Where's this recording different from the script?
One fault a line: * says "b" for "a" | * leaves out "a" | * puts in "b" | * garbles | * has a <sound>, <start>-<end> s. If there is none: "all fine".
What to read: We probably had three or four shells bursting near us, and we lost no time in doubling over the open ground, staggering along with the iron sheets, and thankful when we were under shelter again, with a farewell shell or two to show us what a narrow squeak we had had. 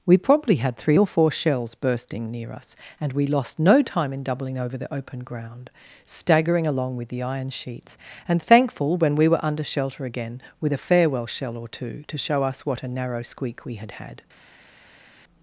all fine